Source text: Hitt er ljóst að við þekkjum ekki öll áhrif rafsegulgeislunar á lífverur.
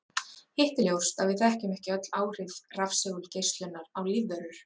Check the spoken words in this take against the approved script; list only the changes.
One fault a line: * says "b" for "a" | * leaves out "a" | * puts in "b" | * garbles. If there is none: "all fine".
all fine